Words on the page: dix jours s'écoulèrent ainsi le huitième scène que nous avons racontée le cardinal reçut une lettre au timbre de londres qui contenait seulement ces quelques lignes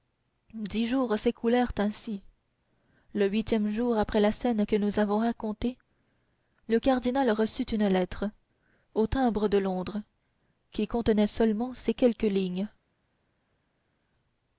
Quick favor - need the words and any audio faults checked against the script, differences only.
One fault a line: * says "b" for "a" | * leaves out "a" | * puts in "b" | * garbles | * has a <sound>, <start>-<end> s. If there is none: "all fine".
* puts in "jour après la"